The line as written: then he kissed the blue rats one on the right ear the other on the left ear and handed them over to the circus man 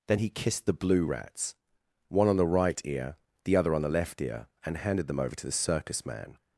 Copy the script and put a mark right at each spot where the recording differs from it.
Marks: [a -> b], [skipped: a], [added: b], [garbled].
then he kissed the blue rats one on the right ear the other on the left ear and handed them over to the circus man